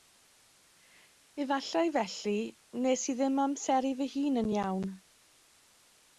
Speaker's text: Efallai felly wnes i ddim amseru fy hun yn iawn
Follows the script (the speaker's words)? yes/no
yes